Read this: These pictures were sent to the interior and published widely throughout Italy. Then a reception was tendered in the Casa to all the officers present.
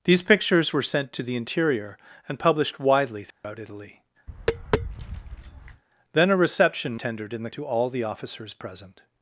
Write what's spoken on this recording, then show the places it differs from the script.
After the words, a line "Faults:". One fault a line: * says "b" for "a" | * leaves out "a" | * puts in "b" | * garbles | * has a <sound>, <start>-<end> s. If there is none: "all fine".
These pictures were sent to the interior and published widely throughout Italy. Then a reception tendered in the To all the officers present.
Faults:
* has a dropout, 3.3-3.4 s
* has a tap, 4.3-5.8 s
* leaves out "was"
* leaves out "Casa"